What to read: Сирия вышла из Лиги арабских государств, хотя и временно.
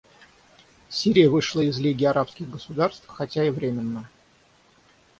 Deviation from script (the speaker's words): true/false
false